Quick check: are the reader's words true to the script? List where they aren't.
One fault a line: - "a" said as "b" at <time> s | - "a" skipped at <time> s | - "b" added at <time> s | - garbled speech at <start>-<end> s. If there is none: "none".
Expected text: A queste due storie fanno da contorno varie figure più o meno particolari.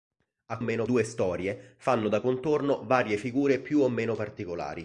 - "queste" said as "meno" at 0.6 s